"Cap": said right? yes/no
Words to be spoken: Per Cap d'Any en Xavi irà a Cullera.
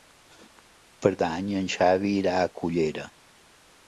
no